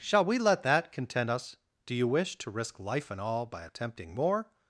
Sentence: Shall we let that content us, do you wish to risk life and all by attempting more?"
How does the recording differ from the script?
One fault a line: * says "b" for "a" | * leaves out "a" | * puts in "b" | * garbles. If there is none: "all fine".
all fine